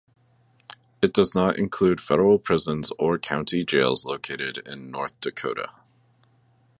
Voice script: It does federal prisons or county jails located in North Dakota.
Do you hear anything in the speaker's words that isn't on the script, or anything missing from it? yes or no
yes